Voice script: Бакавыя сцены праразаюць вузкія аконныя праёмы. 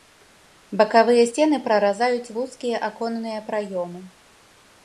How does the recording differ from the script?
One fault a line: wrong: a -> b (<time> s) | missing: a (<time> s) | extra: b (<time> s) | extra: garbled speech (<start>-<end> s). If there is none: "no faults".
no faults